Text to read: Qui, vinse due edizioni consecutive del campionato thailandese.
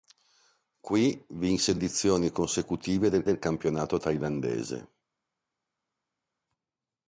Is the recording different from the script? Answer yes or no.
yes